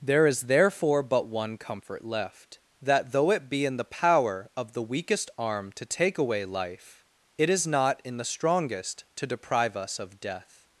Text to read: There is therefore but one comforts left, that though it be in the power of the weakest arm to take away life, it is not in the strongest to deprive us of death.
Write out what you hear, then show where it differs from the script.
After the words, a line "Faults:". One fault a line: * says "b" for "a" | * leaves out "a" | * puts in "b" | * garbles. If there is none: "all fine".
There is therefore but one comfort left, that though it be in the power of the weakest arm to take away life, it is not in the strongest to deprive us of death.
Faults:
* says "comfort" for "comforts"